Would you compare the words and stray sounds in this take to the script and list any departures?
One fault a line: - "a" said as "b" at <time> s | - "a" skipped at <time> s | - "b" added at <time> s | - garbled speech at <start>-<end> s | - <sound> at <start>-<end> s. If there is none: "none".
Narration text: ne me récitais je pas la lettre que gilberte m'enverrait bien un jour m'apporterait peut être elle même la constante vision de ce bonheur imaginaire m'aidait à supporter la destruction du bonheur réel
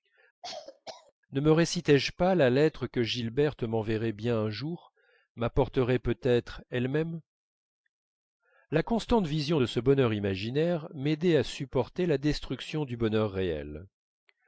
- cough at 0.4-1.1 s